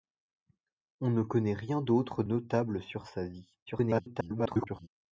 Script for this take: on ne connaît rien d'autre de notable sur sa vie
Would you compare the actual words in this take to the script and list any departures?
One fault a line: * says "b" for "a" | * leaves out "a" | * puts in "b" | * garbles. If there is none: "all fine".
* leaves out "de"
* garbles